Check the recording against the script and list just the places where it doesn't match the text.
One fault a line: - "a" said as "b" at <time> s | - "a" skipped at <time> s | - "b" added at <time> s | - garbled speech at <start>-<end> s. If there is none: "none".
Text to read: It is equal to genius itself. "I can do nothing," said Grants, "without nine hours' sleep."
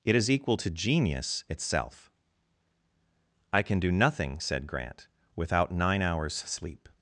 - "Grants" said as "Grant" at 4.7 s